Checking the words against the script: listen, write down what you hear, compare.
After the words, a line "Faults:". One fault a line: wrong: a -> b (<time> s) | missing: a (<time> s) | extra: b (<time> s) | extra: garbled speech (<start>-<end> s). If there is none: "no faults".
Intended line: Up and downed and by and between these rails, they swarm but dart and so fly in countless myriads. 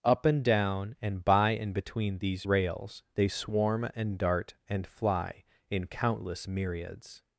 Up and down and by and between these rails, they swarm and dart and fly in countless myriads.
Faults:
wrong: downed -> down (0.4 s)
wrong: but -> and (3.9 s)
missing: so (4.9 s)